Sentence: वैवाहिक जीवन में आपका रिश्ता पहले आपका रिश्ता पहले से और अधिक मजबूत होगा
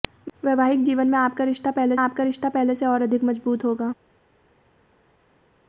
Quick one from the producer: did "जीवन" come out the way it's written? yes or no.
yes